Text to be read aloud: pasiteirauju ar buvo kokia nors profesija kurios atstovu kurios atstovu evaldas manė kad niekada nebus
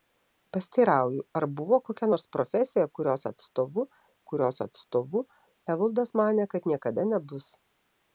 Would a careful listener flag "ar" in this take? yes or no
no